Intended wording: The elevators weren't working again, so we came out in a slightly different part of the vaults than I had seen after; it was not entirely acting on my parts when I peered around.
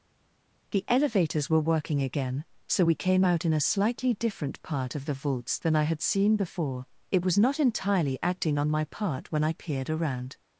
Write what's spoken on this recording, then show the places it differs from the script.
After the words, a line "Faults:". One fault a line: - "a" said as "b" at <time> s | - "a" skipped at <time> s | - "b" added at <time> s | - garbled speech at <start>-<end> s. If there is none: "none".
The elevators were working again, so we came out in a slightly different part of the vaults than I had seen before; it was not entirely acting on my part when I peered around.
Faults:
- "weren't" said as "were" at 1.5 s
- "after" said as "before" at 6.4 s
- "parts" said as "part" at 8.9 s